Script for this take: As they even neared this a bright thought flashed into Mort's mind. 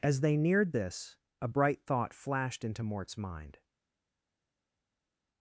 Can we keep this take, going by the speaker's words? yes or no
no